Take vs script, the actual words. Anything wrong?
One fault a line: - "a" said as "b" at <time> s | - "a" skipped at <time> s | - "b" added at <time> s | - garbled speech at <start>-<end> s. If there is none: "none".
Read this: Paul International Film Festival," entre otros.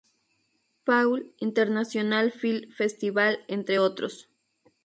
none